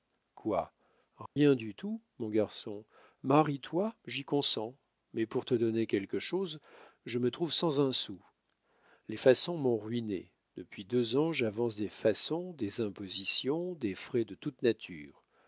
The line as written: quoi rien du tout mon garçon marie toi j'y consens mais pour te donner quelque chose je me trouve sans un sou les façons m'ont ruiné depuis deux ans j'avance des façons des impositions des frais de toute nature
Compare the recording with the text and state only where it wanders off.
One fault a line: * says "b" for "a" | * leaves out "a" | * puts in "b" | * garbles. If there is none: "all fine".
all fine